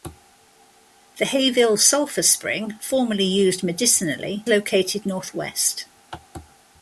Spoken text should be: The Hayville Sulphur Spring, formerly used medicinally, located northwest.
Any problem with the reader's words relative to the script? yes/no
no